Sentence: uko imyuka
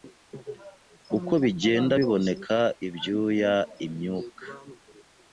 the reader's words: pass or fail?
fail